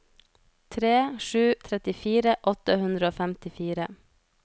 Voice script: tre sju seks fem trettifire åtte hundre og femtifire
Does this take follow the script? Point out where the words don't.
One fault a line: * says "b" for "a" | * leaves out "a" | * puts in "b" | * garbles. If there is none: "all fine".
* leaves out "seks fem"